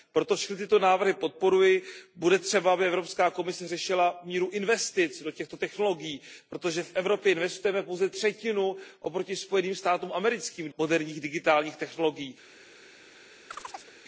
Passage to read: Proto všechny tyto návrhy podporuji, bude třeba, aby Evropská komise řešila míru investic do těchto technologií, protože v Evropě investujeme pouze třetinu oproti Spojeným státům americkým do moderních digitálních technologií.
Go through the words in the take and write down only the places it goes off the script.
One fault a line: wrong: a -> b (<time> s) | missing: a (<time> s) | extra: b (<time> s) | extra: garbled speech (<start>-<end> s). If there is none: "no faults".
missing: do (10.7 s)